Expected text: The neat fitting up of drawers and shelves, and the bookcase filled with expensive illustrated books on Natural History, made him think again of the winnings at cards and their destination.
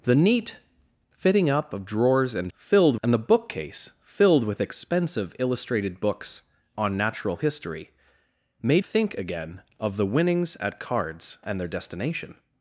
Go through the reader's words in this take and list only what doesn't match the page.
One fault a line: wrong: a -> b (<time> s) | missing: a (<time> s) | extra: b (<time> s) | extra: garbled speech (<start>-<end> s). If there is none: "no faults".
wrong: shelves -> filled (2.5 s)
missing: him (8.8 s)